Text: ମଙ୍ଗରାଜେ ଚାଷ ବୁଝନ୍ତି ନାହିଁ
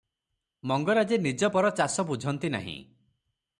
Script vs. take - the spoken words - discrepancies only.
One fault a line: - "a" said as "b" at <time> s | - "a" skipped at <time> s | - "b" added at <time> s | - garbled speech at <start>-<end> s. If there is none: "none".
- "ନିଜ ପର" added at 1.2 s